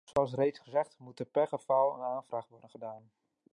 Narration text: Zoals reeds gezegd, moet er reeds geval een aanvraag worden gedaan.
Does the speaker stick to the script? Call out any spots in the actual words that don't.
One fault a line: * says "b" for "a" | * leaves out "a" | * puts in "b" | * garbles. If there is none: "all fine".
* says "per" for "reeds"